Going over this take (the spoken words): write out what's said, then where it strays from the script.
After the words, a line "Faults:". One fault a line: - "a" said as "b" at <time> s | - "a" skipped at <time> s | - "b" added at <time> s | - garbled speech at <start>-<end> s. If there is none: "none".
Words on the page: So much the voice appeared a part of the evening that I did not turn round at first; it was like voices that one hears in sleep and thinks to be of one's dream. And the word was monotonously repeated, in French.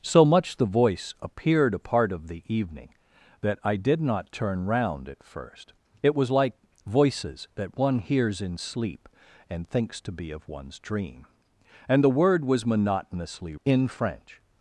So much the voice appeared a part of the evening that I did not turn round at first; it was like voices that one hears in sleep and thinks to be of one's dream. And the word was monotonously in French.
Faults:
- "repeated" skipped at 13.6 s